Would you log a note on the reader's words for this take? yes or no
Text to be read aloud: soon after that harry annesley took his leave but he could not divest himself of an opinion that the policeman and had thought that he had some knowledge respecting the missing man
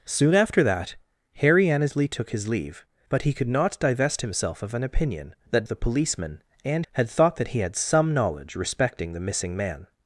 no